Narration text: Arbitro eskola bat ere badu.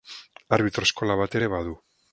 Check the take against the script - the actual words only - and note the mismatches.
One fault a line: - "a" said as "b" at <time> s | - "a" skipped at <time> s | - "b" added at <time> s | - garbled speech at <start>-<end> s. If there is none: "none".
none